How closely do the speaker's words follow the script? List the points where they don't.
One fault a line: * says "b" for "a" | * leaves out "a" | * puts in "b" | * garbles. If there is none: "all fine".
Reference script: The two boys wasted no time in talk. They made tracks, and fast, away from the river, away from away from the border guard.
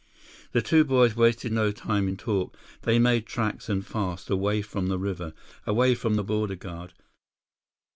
* leaves out "away from"